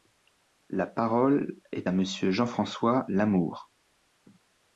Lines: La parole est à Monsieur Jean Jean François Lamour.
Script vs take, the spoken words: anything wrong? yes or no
yes